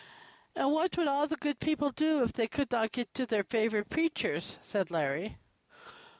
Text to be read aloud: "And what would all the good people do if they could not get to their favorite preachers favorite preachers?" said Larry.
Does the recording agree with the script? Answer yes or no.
no